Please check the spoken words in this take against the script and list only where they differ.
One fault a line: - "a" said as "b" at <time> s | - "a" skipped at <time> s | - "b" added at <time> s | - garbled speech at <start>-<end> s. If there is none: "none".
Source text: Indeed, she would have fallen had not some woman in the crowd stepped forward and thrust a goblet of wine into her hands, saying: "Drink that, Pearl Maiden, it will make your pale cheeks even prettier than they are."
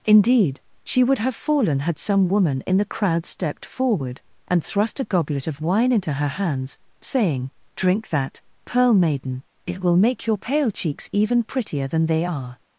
- "not" skipped at 2.0 s